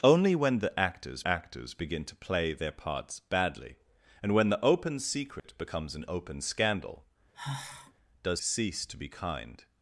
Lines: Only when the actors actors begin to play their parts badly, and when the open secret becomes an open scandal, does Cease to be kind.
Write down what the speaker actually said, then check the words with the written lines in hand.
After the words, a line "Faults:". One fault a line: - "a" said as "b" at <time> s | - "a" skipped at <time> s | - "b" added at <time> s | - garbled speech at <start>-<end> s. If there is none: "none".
Only when the actors actors begin to play their parts badly, and when the open secret becomes an open scandal, does Cease to be kind.
Faults:
none